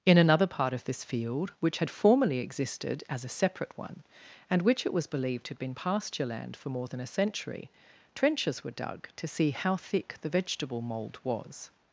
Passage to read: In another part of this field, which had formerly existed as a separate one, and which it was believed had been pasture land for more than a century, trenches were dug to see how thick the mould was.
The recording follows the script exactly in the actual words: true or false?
false